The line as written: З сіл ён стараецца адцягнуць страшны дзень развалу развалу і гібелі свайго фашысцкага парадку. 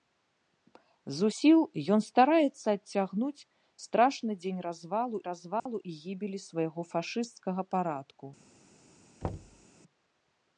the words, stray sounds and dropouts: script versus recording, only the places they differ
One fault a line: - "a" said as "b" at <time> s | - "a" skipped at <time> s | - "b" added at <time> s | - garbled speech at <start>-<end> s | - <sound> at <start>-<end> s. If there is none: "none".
- dropout at 5.6-5.7 s
- thud at 9.2-9.7 s